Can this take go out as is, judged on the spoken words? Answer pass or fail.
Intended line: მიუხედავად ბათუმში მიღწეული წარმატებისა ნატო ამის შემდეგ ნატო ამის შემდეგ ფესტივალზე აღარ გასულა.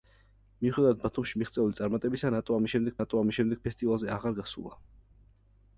pass